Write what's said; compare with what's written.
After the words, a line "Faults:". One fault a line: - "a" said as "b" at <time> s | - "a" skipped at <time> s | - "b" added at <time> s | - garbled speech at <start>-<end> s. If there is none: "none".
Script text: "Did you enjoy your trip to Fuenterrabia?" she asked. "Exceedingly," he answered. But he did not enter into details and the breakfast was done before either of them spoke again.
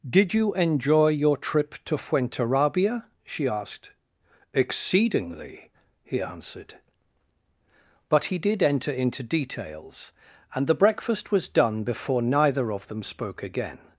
"Did you enjoy your trip to Fuenterrabia?" she asked. "Exceedingly," he answered. But he did enter into details and the breakfast was done before neither of them spoke again.
Faults:
- "not" skipped at 8.6 s
- "either" said as "neither" at 12.2 s